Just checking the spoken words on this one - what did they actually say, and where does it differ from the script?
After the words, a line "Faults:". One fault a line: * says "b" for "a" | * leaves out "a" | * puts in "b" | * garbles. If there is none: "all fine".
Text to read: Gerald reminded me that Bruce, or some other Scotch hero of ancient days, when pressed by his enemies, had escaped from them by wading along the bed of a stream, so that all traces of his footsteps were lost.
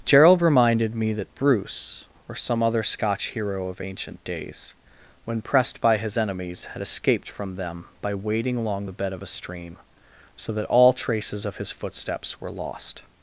Gerald reminded me that Bruce, or some other Scotch hero of ancient days, when pressed by his enemies, had escaped from them by wading along the bed of a stream, so that all traces of his footsteps were lost.
Faults:
all fine